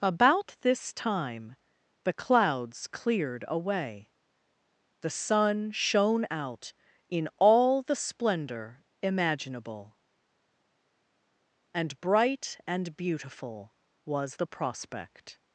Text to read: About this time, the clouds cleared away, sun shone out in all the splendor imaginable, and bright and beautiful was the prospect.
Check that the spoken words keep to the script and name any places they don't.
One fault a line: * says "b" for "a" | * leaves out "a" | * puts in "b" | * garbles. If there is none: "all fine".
* puts in "the"